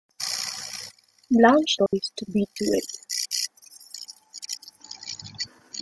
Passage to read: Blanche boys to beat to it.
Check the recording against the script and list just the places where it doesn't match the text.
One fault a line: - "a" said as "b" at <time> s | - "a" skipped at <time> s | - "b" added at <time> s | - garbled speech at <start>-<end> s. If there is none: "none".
none